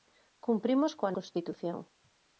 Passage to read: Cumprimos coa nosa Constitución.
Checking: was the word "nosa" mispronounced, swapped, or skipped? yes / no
yes